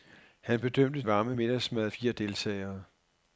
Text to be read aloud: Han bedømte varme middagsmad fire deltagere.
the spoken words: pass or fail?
pass